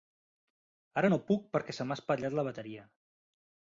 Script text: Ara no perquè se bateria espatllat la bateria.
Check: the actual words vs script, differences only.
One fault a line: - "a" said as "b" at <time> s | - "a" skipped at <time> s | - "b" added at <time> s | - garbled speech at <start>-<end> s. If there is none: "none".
- "puc" added at 1.3 s
- "bateria" said as "m'ha" at 1.9 s